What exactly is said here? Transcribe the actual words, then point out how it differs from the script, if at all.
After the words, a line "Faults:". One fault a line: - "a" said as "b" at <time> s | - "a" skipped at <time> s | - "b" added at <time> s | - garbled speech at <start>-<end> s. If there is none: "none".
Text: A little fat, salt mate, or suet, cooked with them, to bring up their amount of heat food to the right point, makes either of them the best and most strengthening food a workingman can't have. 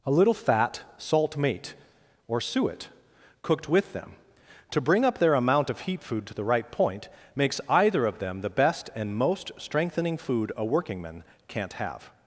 A little fat, salt mate, or suet, cooked with them, to bring up their amount of heat food to the right point, makes either of them the best and most strengthening food a workingman can't have.
Faults:
none